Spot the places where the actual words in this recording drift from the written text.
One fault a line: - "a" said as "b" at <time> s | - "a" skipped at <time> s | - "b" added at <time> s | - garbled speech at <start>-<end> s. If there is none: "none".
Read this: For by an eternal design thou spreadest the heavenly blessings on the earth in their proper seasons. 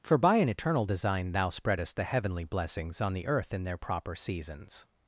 none